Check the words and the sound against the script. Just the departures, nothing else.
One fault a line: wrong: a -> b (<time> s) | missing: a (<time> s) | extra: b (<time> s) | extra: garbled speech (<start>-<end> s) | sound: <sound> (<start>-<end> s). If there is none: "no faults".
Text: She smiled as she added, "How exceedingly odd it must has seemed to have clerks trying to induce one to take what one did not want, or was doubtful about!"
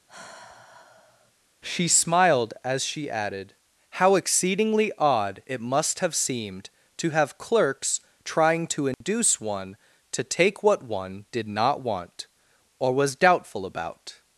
sound: sigh (0.1-1.3 s)
wrong: has -> have (6.0 s)
sound: dropout (8.9-9.0 s)